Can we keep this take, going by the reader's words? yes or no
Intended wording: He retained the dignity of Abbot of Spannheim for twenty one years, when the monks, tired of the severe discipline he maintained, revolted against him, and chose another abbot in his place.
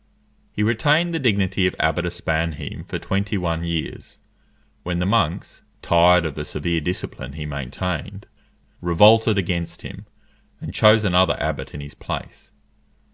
yes